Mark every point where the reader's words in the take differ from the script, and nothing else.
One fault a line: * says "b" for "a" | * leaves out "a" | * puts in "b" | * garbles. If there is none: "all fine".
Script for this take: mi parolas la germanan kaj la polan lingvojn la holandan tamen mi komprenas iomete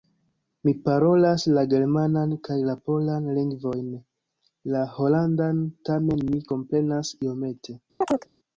all fine